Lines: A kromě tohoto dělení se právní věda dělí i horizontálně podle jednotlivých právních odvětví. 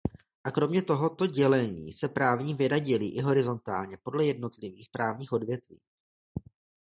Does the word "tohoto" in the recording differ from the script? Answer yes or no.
no